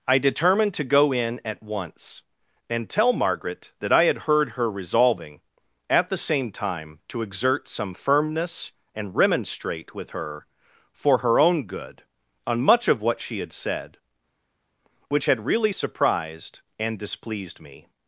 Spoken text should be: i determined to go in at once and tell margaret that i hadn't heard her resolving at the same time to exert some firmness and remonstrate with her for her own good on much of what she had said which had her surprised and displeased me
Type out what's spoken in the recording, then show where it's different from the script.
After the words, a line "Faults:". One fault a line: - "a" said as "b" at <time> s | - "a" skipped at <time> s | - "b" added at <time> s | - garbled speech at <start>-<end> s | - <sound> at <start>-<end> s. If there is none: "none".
i determined to go in at once and tell margaret that i had heard her resolving at the same time to exert some firmness and remonstrate with her for her own good on much of what she had said which had really surprised and displeased me
Faults:
- "hadn't" said as "had" at 4.0 s
- "her" said as "really" at 15.4 s